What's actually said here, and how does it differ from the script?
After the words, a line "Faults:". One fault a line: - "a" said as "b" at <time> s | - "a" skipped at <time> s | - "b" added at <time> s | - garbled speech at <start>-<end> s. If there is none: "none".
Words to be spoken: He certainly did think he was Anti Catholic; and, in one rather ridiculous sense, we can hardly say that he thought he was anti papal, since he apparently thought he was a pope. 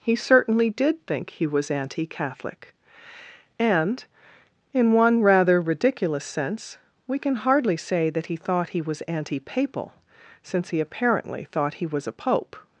He certainly did think he was Anti Catholic; and, in one rather ridiculous sense, we can hardly say that he thought he was anti papal, since he apparently thought he was a pope.
Faults:
none